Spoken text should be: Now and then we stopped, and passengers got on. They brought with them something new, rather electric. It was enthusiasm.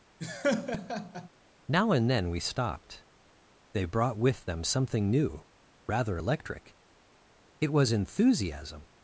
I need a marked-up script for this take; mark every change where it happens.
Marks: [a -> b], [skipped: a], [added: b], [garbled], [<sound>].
[laugh] Now and then we stopped, [skipped: and passengers got on.] They brought with them something new, rather electric. It was enthusiasm.